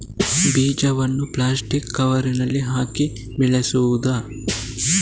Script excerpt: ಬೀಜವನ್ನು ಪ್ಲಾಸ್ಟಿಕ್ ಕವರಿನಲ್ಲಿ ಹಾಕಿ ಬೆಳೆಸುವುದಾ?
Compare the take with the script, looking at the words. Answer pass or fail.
pass